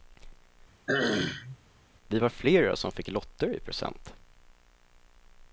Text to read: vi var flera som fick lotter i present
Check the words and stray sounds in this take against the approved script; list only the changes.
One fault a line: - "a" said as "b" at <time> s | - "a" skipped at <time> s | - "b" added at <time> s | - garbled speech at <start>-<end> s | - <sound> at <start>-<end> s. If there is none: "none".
- throat clearing at 0.9-1.6 s